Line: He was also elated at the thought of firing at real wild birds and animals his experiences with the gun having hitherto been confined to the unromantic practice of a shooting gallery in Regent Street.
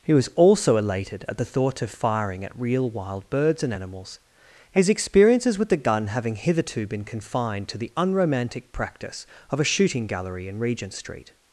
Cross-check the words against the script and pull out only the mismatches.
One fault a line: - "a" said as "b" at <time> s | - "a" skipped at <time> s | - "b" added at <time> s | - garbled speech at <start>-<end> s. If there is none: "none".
none